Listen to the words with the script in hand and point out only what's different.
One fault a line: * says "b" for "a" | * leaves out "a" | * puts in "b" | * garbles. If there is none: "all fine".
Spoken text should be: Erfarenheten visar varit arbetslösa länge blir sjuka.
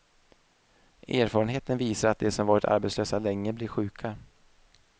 * puts in "att de som"